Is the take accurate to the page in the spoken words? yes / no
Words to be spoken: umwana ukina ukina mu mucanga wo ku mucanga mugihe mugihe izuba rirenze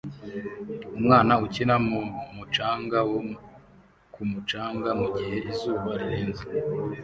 no